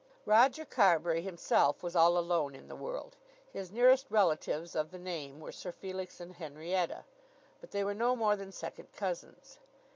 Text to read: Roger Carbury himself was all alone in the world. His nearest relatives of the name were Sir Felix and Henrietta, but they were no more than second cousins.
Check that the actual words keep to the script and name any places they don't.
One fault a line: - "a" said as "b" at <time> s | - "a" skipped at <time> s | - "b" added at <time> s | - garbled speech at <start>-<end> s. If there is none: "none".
none